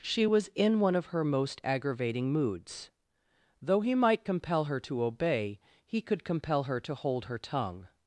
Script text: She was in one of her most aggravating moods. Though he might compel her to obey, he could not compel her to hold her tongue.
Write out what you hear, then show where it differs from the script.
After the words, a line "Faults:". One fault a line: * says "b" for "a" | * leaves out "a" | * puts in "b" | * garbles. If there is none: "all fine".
She was in one of her most aggravating moods. Though he might compel her to obey, he could compel her to hold her tongue.
Faults:
* leaves out "not"